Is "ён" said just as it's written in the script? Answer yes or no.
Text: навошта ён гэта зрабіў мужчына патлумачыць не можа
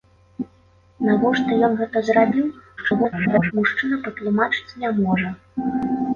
yes